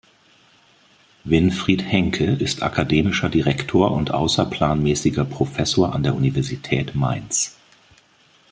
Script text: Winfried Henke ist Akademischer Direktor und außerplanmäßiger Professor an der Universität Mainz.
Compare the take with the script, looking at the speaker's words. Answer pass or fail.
pass